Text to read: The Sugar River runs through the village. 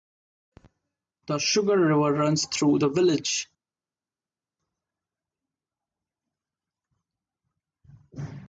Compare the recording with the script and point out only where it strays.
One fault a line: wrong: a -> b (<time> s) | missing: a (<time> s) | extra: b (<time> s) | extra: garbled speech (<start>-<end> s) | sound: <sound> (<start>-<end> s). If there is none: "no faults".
no faults